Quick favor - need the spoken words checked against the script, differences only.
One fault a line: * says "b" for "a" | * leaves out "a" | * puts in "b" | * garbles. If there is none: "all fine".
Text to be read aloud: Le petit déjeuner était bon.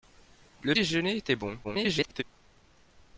* leaves out "petit"
* garbles